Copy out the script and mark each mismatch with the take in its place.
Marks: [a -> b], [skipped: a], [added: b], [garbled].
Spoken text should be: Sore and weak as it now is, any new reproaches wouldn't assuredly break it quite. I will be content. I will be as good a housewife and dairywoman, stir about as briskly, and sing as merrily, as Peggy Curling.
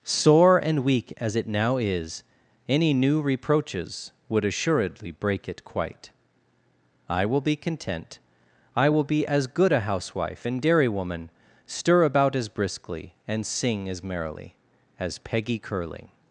Sore and weak as it now is, any new reproaches [wouldn't -> would] assuredly break it quite. I will be content. I will be as good a housewife and dairywoman, stir about as briskly, and sing as merrily, as Peggy Curling.